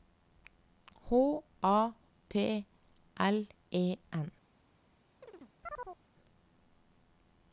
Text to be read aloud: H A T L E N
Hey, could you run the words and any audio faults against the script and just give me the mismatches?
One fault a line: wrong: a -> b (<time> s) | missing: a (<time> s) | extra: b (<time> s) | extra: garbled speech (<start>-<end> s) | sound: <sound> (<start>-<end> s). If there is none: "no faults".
sound: chirp (5.2-6.0 s)